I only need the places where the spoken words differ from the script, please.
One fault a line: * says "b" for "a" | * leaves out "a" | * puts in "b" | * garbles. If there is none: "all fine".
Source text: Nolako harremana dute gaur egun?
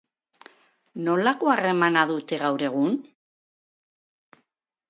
all fine